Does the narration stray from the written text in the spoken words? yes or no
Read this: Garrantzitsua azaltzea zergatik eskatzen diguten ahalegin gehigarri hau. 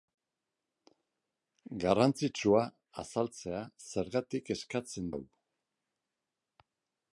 yes